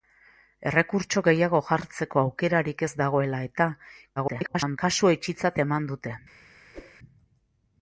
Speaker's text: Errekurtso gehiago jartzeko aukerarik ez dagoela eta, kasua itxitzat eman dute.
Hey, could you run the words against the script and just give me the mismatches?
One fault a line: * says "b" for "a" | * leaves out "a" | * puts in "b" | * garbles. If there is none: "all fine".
* garbles